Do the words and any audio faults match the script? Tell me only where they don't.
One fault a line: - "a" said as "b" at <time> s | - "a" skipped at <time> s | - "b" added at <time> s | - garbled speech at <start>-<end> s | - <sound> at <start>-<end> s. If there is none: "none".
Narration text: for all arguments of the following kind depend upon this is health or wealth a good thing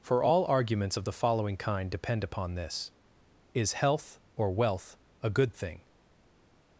none